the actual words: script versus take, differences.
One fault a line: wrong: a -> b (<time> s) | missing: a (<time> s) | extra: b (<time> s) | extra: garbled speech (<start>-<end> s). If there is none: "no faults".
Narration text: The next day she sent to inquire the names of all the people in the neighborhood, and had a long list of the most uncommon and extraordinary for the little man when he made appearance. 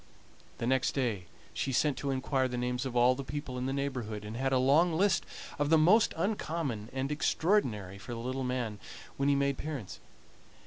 no faults